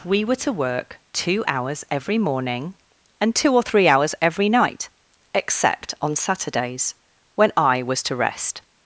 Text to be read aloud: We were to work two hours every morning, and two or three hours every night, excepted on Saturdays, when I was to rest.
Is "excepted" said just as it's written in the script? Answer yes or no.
no